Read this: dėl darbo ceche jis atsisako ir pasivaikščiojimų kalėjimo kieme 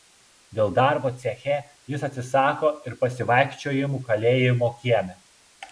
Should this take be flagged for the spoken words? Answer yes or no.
no